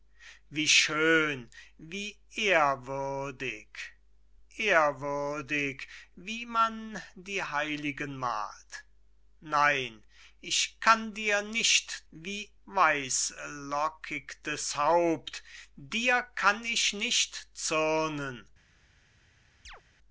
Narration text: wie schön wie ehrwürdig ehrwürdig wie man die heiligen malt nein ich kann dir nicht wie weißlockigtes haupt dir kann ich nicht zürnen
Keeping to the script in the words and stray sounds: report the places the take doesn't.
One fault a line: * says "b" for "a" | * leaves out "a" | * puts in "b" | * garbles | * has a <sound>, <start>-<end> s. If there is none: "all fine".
* has a chirp, 19.6-19.8 s